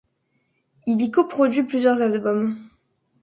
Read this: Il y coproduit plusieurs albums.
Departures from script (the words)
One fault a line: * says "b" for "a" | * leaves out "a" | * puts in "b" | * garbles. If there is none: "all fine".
all fine